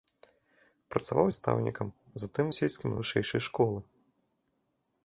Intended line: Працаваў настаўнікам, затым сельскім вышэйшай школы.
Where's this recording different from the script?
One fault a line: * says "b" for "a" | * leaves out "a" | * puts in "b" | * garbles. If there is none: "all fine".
all fine